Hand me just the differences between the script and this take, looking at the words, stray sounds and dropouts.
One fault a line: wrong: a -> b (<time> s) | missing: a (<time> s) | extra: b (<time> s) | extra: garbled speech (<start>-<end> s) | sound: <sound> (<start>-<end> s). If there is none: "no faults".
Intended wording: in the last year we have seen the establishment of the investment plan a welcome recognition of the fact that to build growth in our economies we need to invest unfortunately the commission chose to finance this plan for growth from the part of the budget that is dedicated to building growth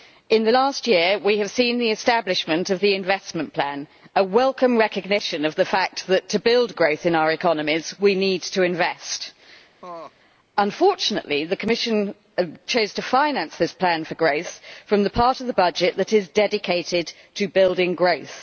sound: laugh (9.8-10.1 s)